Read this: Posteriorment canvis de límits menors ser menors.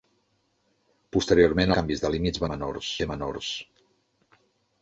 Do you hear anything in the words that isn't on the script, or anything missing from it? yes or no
no